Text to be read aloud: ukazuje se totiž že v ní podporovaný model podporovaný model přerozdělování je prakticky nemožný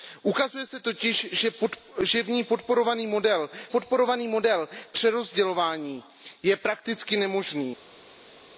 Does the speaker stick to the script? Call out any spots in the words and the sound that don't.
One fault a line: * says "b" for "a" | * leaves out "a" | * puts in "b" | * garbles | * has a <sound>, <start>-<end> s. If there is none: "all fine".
all fine